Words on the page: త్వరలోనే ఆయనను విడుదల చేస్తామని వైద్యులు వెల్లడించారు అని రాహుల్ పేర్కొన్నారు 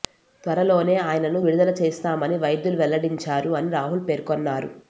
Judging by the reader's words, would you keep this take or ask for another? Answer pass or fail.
pass